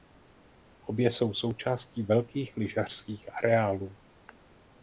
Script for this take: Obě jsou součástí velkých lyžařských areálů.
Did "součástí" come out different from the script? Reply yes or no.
no